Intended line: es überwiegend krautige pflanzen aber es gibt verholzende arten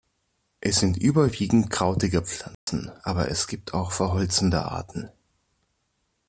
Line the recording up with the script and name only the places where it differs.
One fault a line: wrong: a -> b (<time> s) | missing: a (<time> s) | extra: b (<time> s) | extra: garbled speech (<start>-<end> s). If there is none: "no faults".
extra: sind (0.8 s)
extra: auch (3.7 s)